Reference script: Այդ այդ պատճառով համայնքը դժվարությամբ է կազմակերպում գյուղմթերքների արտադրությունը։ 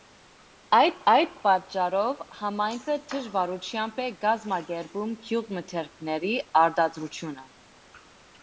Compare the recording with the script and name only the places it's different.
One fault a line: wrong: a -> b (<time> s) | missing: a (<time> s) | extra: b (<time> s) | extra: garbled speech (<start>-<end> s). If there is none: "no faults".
no faults